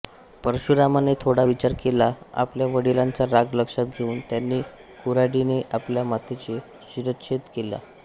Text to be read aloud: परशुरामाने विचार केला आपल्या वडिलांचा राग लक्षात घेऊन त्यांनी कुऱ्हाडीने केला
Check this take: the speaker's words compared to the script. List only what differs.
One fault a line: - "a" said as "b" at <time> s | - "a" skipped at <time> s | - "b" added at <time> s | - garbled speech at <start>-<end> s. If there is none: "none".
- "थोडा" added at 1.2 s
- "आपल्या मातेचा शिरच्छेद" added at 5.7 s